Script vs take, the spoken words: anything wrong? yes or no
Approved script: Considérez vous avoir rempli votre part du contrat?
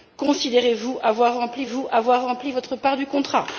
yes